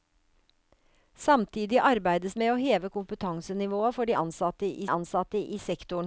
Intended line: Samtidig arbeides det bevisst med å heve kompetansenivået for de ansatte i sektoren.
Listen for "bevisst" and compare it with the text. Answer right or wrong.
wrong